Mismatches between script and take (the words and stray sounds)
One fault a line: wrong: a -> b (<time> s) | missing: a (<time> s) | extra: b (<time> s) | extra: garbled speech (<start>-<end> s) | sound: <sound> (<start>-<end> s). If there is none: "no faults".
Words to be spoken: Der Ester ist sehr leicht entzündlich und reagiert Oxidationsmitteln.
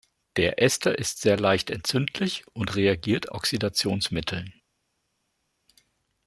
no faults